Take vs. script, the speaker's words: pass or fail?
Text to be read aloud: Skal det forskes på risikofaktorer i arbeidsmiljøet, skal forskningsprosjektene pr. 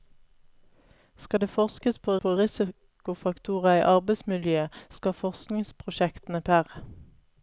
fail